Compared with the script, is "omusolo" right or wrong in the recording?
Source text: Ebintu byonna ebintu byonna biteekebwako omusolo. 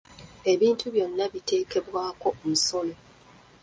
right